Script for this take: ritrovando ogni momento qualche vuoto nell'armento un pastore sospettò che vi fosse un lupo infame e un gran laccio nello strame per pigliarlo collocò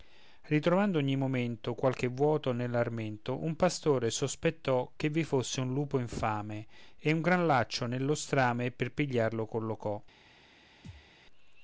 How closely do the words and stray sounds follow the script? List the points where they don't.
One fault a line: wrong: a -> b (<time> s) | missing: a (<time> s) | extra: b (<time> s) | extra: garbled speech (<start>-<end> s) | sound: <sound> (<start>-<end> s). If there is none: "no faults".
sound: thud (10.8-11.1 s)